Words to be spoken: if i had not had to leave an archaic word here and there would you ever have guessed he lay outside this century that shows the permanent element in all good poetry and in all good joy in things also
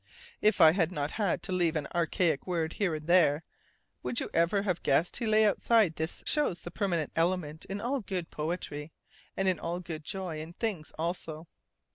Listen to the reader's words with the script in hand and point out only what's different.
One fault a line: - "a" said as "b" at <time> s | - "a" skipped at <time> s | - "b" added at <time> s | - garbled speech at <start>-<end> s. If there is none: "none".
- "century that" skipped at 6.2 s